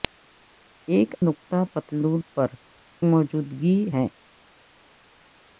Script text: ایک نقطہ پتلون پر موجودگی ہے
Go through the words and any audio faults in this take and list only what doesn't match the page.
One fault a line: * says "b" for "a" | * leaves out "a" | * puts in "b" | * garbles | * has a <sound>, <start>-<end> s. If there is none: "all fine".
all fine